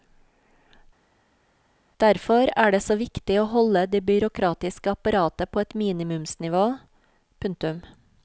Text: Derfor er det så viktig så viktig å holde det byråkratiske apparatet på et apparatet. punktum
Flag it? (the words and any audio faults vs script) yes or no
yes